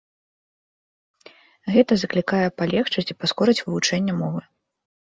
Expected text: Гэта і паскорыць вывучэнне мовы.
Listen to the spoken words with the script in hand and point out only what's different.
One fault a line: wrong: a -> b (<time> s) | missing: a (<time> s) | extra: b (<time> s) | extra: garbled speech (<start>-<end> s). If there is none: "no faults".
extra: заклікае палегчыць (2.0 s)